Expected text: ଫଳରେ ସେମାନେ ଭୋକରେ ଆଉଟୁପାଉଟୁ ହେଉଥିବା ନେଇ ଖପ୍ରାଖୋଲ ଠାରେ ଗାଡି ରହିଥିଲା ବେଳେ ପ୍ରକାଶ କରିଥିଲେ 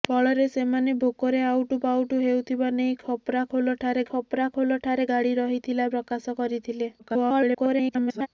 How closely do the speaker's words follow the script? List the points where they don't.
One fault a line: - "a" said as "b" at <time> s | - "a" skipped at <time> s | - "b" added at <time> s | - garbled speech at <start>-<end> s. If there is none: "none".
- "ଖପ୍ରାଖୋଲ ଠାରେ" added at 4.1 s
- "ବେଳେ" skipped at 5.9 s
- garbled speech at 7.0-8.3 s